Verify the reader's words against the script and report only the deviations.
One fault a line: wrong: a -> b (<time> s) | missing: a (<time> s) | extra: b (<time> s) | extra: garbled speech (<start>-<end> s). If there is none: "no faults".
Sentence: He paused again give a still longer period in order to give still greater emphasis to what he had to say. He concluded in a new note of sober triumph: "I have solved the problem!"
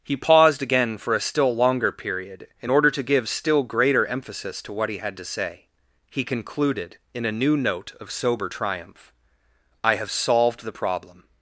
wrong: give -> for (1.0 s)